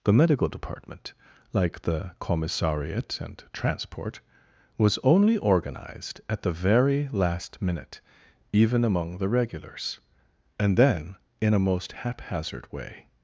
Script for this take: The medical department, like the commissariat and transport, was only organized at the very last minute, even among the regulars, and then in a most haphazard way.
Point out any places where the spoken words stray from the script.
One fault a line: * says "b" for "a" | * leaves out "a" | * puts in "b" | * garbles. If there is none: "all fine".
all fine